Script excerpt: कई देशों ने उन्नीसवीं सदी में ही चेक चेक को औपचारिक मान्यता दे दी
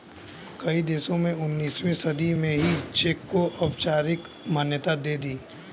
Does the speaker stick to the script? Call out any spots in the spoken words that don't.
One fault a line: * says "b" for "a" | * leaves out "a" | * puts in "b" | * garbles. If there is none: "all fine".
* leaves out "चेक"